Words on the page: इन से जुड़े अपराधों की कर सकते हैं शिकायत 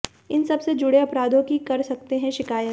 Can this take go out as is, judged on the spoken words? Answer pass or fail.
fail